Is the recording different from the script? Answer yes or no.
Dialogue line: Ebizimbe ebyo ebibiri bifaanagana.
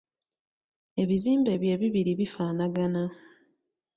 no